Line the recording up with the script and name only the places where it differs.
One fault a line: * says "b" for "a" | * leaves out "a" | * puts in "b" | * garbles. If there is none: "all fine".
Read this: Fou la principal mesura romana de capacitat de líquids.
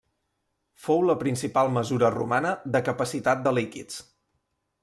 all fine